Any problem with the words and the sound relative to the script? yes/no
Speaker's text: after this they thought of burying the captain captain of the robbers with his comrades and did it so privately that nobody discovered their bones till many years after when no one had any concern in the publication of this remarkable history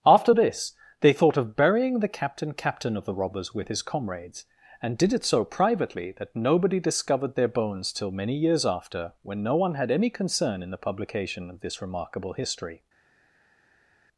no